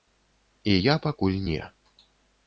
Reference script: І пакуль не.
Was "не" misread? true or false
false